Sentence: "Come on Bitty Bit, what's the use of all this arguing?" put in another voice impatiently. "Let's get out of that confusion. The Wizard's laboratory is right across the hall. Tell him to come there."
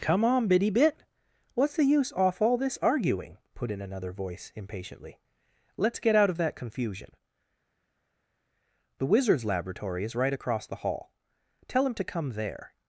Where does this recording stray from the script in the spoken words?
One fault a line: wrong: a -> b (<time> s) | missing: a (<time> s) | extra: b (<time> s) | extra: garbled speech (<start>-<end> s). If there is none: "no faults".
wrong: of -> off (2.1 s)